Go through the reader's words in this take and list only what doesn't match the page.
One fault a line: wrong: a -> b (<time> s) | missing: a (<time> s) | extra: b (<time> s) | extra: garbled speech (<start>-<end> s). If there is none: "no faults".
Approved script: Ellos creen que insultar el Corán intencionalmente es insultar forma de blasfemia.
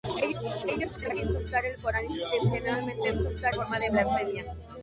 no faults